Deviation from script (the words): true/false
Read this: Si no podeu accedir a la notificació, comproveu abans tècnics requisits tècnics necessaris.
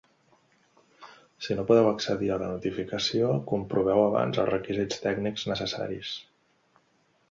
true